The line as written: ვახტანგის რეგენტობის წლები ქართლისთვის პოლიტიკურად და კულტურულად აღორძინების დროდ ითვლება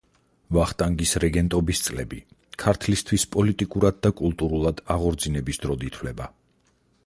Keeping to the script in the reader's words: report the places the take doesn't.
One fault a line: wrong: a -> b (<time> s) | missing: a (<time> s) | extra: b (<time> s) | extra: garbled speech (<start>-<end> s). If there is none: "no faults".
no faults